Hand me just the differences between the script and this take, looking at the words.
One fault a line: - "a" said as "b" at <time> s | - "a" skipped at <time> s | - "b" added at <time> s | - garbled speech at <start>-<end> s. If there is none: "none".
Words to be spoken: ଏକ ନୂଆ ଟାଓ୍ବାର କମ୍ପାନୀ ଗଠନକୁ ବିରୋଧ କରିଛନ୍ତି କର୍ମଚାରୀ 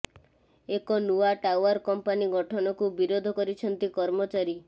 none